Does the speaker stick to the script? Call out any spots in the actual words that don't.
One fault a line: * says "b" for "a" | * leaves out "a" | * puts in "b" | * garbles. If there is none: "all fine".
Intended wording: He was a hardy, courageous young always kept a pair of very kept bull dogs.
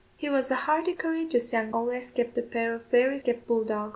all fine